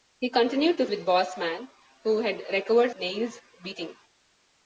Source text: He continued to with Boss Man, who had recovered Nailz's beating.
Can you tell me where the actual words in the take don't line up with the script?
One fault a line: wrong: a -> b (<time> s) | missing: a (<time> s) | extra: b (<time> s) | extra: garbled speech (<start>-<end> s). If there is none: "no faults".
no faults